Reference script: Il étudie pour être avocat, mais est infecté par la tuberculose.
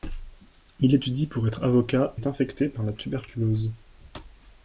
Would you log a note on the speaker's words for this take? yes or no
yes